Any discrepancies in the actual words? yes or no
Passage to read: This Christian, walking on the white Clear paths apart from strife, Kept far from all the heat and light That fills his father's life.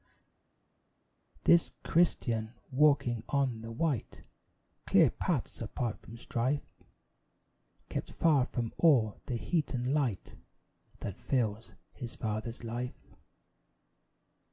no